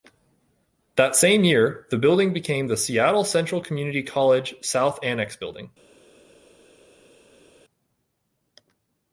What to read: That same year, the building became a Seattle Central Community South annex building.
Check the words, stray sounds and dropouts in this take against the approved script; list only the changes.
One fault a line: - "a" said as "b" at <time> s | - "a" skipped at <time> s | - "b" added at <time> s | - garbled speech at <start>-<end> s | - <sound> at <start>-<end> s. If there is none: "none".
- "a" said as "the" at 2.6 s
- "College" added at 4.0 s